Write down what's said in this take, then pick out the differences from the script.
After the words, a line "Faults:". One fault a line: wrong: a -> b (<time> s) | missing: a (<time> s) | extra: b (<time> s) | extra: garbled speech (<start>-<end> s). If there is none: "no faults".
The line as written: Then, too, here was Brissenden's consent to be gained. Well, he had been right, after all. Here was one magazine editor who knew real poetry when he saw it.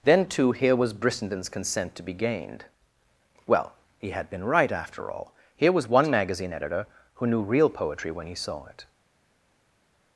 Then, too, here was Brissenden's consent to be gained. Well, he had been right, after all. Here was one magazine editor who knew real poetry when he saw it.
Faults:
no faults